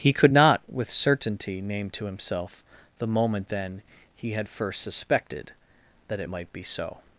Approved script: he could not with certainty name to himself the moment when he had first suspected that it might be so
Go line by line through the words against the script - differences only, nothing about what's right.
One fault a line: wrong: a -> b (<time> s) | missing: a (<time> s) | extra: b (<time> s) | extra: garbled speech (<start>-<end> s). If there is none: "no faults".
wrong: when -> then (3.5 s)